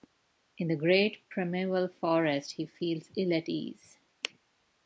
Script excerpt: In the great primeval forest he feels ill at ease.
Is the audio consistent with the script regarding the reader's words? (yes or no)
yes